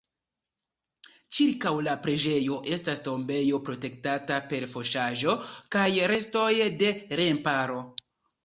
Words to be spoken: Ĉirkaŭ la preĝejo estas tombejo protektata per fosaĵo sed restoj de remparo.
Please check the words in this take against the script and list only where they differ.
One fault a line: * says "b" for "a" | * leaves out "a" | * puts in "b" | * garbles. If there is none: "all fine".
* says "kaj" for "sed"